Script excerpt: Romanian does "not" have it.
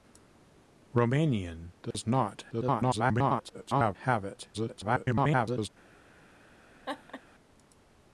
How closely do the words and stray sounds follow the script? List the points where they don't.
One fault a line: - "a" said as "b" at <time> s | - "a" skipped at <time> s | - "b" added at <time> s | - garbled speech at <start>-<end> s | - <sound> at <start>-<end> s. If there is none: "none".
- dropout at 1.9-1.9 s
- garbled speech at 2.5-4.0 s
- garbled speech at 4.5-5.7 s
- laugh at 6.9-7.2 s